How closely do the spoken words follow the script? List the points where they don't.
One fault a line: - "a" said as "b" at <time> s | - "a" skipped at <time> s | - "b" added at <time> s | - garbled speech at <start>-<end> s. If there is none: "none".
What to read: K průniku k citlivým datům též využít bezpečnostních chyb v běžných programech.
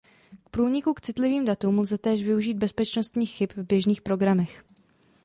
- "lze" added at 1.8 s